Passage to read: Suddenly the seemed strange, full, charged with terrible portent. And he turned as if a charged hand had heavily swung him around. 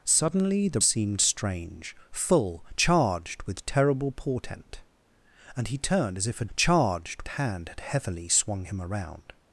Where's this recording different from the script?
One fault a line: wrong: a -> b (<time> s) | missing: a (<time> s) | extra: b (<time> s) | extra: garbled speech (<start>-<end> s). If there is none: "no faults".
no faults